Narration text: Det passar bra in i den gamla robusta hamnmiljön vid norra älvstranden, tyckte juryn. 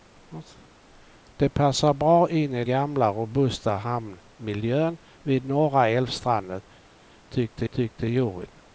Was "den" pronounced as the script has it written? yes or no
no